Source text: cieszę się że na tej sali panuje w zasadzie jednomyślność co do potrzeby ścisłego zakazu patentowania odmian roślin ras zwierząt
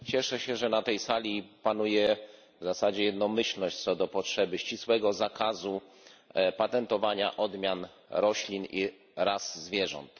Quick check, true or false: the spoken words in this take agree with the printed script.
false